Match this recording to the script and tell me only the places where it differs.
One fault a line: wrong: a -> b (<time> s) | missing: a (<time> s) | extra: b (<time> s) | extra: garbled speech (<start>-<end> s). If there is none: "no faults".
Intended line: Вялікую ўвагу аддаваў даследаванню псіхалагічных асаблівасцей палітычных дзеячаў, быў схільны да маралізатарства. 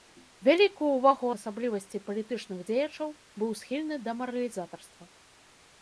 missing: аддаваў даследаванню псіхалагічных (1.3 s)